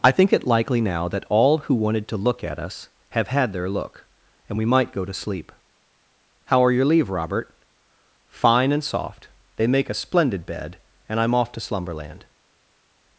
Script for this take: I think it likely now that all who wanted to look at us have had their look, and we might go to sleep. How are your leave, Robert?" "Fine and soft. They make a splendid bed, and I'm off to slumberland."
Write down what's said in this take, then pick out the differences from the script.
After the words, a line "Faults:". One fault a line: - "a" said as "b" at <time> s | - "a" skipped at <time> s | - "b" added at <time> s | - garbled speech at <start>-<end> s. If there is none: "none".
I think it likely now that all who wanted to look at us have had their look, and we might go to sleep. How are your leave, Robert?" "Fine and soft. They make a splendid bed, and I'm off to slumberland."
Faults:
none